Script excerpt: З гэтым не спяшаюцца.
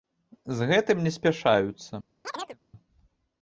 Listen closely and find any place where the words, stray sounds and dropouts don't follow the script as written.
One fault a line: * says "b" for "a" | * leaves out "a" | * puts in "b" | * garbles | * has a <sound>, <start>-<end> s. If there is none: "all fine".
* has a chirp, 2.2-2.6 s